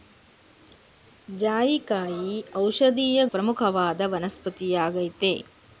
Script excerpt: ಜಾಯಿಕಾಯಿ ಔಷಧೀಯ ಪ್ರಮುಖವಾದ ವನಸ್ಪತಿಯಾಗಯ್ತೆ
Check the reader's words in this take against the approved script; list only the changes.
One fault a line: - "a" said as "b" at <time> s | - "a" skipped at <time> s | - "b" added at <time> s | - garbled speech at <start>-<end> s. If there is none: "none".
none